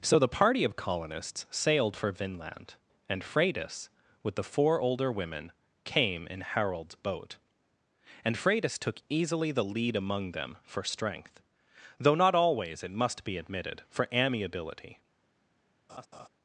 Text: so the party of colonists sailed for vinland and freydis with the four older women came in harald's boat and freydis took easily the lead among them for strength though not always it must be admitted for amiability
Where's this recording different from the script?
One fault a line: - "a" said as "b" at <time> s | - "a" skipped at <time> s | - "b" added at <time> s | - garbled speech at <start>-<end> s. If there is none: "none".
none